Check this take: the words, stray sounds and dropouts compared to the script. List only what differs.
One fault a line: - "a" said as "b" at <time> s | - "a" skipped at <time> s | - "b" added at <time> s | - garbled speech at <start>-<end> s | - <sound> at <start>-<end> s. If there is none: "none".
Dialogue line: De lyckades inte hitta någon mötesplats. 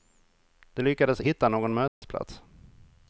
- "inte" skipped at 1.2 s
- dropout at 1.9-2.0 s